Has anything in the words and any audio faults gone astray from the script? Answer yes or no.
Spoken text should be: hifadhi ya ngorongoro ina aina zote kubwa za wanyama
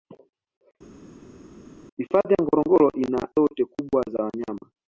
yes